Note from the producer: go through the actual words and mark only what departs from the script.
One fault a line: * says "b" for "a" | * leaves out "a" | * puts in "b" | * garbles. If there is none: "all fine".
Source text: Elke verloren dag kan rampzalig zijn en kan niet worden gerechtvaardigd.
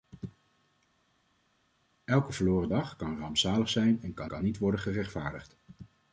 * puts in "kan"